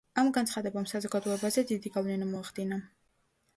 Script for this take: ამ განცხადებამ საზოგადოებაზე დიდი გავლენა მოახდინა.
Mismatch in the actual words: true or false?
false